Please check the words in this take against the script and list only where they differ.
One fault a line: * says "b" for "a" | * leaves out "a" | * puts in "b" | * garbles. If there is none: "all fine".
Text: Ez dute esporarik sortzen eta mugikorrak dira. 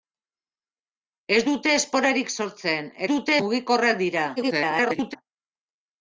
* says "dute" for "eta"
* garbles